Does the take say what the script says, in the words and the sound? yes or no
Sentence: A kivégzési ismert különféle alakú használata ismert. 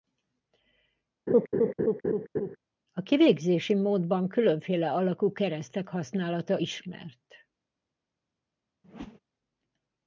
no